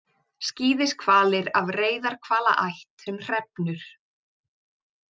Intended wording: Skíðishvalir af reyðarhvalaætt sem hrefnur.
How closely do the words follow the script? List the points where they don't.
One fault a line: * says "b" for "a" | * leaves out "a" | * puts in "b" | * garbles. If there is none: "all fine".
all fine